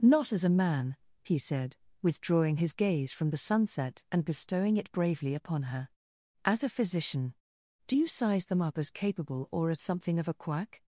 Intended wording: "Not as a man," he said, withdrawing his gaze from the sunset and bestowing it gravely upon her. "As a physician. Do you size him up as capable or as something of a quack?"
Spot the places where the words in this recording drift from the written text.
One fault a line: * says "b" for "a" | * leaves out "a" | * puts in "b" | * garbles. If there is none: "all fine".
* says "bravely" for "gravely"
* says "them" for "him"